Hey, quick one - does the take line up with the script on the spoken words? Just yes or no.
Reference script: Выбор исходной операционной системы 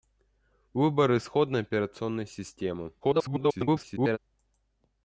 no